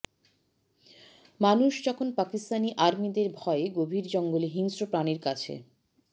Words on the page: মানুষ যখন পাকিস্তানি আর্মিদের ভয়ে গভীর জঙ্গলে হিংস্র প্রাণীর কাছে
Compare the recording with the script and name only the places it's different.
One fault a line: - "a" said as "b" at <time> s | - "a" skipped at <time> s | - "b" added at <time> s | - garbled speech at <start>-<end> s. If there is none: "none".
none